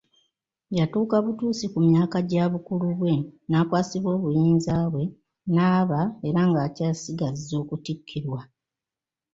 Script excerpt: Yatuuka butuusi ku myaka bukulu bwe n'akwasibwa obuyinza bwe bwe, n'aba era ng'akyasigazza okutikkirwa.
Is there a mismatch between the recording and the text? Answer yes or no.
yes